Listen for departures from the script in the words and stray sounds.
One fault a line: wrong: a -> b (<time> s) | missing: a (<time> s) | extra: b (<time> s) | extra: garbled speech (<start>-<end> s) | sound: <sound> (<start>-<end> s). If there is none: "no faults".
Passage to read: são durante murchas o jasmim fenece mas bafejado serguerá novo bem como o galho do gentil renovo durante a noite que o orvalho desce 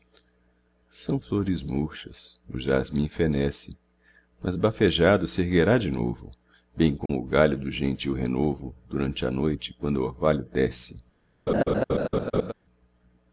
wrong: durante -> flores (1.2 s)
extra: de (5.8 s)
sound: dropout (7.1-7.1 s)
wrong: que -> quando (9.7 s)
sound: laugh (11.5-12.5 s)